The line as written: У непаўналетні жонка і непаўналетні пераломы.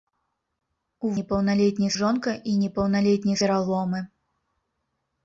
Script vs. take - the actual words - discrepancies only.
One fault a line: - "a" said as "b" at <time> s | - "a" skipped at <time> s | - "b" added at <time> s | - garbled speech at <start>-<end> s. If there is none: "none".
none